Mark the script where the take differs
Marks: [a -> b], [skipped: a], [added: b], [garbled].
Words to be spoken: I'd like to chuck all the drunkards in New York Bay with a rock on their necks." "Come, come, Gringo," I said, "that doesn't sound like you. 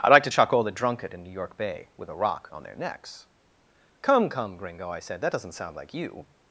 I'd like to chuck all the [drunkards -> drunkard] in New York Bay with a rock on their necks." "Come, come, Gringo," I said, "that doesn't sound like you.